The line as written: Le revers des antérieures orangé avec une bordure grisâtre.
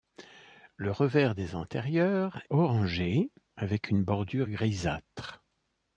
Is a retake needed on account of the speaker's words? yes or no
no